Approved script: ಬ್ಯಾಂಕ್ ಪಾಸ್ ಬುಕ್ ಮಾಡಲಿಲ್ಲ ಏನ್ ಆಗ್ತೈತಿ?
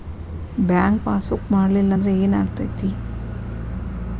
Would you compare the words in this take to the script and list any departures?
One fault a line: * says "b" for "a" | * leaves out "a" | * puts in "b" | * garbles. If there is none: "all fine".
* puts in "ಅಂದ್ರೆ"